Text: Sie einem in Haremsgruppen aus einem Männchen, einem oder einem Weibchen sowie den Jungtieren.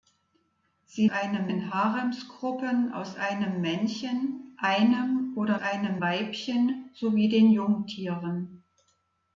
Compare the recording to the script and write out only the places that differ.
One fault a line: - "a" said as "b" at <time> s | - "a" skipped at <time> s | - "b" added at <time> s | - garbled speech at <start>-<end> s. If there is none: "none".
none